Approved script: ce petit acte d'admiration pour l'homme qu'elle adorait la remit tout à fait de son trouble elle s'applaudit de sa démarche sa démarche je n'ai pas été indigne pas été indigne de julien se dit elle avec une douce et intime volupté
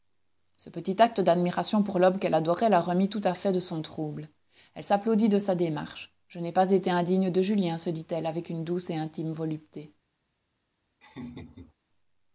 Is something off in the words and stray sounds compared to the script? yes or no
yes